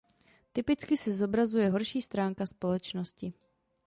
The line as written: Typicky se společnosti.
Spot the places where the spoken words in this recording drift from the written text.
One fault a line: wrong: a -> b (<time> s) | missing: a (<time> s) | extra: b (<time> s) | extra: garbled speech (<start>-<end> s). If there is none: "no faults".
extra: zobrazuje horší stránka (1.1 s)